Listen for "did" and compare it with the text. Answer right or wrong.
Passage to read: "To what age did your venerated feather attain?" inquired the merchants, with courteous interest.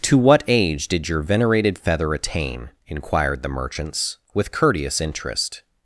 right